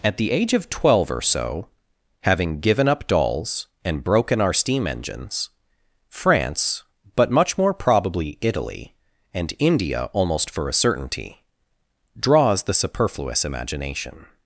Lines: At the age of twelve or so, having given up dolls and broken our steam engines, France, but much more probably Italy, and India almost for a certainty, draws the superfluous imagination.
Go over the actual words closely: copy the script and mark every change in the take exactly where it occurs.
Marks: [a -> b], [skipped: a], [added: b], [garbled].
At the age of twelve or so, having given up dolls and broken our steam engines, France, but much more probably Italy, and India almost for a certainty, draws the superfluous imagination.